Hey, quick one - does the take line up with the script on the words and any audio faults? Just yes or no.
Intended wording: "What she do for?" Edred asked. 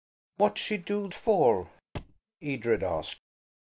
no